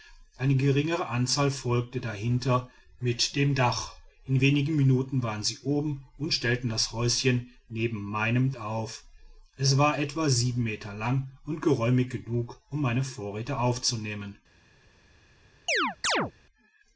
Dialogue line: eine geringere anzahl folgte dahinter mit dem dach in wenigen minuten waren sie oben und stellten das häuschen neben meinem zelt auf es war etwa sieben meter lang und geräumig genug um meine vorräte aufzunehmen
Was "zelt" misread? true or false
true